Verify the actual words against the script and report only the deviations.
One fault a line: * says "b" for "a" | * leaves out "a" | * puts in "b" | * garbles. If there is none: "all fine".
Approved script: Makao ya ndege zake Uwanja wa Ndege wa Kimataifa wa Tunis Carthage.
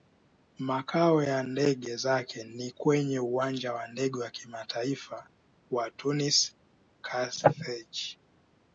* puts in "ni kwenye"